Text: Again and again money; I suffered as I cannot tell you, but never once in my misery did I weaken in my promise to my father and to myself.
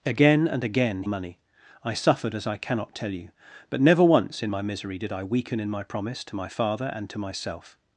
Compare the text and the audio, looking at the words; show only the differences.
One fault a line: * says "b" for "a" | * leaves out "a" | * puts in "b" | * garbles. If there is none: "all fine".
all fine